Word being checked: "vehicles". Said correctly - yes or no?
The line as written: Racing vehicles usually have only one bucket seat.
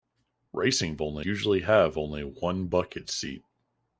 no